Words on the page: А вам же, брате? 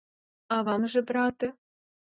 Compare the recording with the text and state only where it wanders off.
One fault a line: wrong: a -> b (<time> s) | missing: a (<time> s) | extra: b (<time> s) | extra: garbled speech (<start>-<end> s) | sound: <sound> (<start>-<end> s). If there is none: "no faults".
no faults